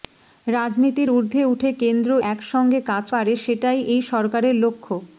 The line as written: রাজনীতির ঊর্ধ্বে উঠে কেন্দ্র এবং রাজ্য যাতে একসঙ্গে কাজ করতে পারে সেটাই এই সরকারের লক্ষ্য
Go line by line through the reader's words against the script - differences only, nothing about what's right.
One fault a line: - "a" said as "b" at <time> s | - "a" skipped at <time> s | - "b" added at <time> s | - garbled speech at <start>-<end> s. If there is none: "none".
- "এবং রাজ্য যাতে" skipped at 2.1 s
- "করতে" skipped at 3.1 s